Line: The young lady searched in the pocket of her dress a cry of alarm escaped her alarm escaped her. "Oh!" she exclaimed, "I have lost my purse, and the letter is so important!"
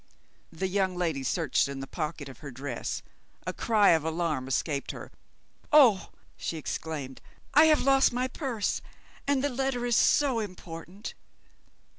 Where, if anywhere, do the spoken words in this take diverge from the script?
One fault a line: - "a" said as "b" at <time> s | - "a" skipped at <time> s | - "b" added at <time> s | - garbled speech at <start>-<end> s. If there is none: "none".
- "alarm escaped her" skipped at 5.1 s